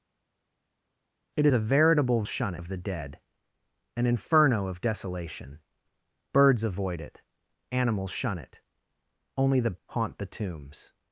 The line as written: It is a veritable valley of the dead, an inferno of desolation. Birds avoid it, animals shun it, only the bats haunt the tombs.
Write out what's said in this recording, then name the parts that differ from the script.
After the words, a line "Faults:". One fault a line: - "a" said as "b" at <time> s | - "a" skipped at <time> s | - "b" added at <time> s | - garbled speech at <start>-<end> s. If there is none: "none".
It a veritable shun of the dead, an inferno of desolation. Birds avoid it, animals shun it, only the haunt the tombs.
Faults:
- "is" skipped at 1.5 s
- "valley" said as "shun" at 2.3 s
- "bats" skipped at 9.8 s